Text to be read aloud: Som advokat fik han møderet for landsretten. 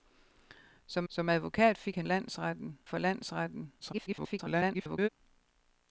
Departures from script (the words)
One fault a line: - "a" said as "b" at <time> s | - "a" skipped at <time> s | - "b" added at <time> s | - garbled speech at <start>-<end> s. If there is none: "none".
- "som" added at 1.1 s
- "møderet" said as "landsretten" at 2.0 s
- garbled speech at 3.8-5.1 s